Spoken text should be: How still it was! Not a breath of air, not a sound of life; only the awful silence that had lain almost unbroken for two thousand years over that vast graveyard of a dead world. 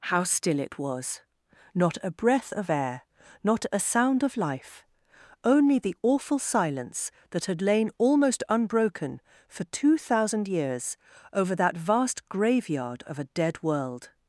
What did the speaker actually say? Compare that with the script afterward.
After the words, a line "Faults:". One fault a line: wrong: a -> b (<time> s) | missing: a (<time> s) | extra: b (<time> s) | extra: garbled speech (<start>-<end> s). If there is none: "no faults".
How still it was! Not a breath of air, not a sound of life; only the awful silence that had lain almost unbroken for two thousand years over that vast graveyard of a dead world.
Faults:
no faults